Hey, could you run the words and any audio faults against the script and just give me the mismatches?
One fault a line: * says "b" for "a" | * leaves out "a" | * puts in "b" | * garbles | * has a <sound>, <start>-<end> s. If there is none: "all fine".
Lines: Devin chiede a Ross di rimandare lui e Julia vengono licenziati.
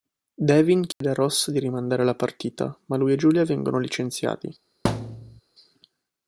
* has a dropout, 0.9-1.0 s
* puts in "la partita ma"
* has a thud, 4.8-5.4 s